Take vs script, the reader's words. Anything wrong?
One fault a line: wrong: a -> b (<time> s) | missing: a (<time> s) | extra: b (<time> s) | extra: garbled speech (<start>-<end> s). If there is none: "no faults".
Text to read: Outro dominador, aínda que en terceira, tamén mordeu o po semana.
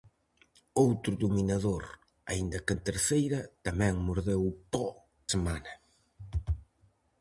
no faults